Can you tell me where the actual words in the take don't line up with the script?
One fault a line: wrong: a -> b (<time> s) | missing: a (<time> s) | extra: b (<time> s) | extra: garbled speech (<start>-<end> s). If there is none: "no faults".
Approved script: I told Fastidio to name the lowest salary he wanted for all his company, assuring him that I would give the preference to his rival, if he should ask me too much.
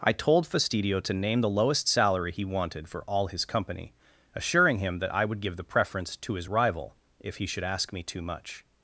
no faults